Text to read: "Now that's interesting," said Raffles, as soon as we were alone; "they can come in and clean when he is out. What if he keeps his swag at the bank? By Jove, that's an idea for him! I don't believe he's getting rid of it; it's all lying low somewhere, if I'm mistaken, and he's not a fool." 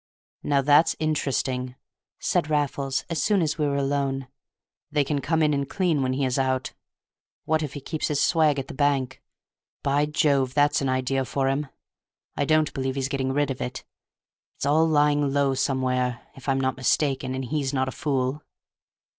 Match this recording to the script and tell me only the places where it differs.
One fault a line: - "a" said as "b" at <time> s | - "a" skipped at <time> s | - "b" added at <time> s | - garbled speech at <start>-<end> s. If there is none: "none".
- "not" added at 16.6 s